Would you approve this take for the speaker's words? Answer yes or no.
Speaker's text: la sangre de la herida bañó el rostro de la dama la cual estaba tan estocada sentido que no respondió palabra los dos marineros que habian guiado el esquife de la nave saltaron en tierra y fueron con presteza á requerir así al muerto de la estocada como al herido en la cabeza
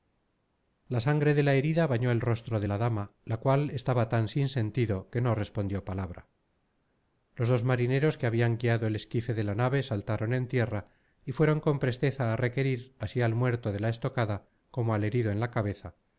no